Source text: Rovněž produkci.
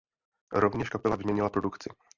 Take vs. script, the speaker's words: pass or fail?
fail